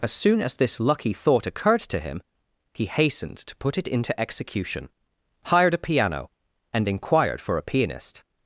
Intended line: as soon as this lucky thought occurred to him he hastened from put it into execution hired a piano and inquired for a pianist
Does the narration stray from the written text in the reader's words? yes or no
yes